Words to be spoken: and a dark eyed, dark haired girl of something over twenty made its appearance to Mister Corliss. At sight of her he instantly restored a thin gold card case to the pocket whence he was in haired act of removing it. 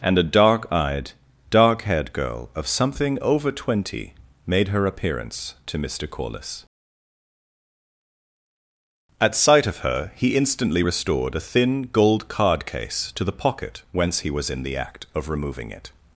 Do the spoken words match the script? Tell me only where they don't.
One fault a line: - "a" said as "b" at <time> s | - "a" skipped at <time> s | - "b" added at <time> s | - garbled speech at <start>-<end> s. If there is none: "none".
- "its" said as "her" at 4.7 s
- "haired" said as "the" at 14.6 s